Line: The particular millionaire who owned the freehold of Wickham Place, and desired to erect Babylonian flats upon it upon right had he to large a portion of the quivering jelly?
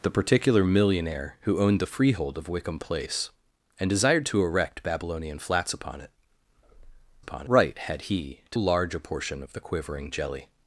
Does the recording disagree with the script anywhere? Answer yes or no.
no